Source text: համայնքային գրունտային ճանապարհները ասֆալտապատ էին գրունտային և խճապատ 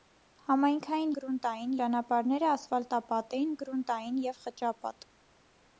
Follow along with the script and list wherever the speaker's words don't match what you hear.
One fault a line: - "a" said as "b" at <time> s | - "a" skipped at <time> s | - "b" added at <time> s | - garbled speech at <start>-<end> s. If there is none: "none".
none